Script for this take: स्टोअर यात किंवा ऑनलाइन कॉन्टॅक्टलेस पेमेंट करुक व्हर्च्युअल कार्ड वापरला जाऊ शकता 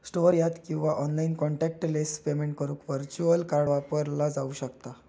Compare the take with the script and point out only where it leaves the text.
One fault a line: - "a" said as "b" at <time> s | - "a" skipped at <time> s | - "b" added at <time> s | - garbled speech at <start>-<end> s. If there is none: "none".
none